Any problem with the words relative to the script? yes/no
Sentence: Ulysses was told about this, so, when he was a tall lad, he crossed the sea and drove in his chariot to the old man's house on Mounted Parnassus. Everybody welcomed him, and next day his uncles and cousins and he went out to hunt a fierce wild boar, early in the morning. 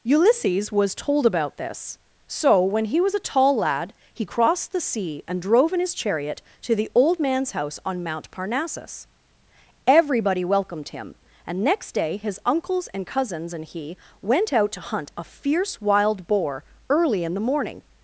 yes